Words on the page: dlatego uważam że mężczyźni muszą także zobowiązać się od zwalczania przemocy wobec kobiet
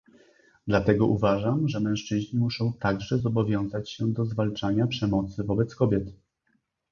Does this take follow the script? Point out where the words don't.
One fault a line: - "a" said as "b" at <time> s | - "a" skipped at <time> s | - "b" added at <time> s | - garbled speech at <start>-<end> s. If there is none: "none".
- "od" said as "do" at 4.1 s